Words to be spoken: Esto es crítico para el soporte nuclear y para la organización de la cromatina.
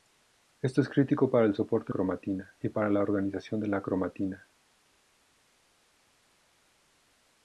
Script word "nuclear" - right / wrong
wrong